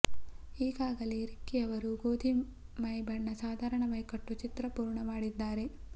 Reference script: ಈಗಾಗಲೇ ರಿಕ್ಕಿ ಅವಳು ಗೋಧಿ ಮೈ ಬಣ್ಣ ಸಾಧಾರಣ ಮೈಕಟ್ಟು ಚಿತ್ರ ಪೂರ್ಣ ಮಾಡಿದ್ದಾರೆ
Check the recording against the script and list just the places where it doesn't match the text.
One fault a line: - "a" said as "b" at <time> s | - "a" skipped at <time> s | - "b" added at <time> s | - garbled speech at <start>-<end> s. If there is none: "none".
- "ಅವಳು" said as "ಅವರು" at 1.6 s